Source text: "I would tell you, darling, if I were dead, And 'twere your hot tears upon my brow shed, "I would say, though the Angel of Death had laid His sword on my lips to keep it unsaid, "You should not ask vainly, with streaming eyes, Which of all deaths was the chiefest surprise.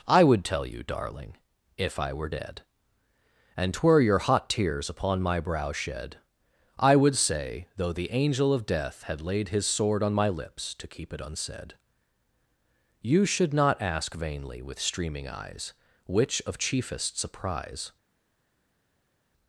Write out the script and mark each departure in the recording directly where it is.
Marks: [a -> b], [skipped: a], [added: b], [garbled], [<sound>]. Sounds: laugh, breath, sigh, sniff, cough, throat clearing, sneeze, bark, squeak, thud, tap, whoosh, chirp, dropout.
"I would tell you, darling, if I were dead, And 'twere your hot tears upon my brow shed, "I would say, though the Angel of Death had laid His sword on my lips to keep it unsaid, "You should not ask vainly, with streaming eyes, Which of [skipped: all deaths was the] chiefest surprise.